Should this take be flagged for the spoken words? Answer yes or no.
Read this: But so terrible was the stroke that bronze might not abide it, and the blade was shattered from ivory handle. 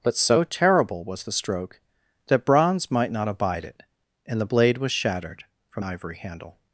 no